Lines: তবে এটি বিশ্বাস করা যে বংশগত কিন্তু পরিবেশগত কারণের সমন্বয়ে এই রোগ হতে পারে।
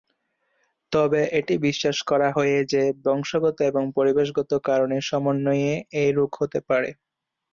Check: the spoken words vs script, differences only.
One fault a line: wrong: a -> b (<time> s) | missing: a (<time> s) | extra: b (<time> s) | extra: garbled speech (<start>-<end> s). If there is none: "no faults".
extra: হয়ে (2.3 s)
wrong: কিন্তু -> এবং (3.7 s)